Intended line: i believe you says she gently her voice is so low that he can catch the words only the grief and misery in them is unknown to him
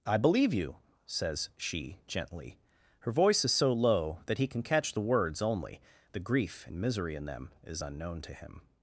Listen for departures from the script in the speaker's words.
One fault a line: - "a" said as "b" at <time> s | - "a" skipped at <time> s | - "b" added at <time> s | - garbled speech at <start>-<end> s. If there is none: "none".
none